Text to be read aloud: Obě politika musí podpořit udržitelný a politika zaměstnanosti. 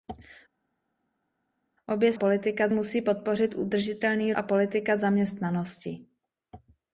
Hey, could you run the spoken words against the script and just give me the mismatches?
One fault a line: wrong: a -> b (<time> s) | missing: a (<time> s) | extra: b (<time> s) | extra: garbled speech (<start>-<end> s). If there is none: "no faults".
no faults